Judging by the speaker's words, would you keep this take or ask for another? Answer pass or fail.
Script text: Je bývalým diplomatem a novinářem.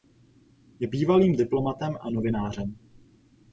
pass